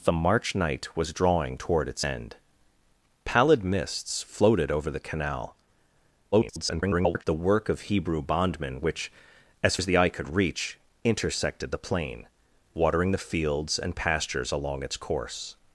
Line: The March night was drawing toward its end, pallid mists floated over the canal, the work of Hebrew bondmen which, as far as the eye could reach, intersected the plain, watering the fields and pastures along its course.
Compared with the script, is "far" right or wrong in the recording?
wrong